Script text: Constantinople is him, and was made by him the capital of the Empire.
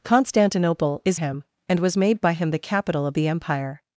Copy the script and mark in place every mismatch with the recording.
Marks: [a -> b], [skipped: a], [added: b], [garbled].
Constantinople is him, and was made by him the capital of the Empire.